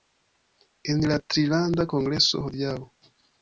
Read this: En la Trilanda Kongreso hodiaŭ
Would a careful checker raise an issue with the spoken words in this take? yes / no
no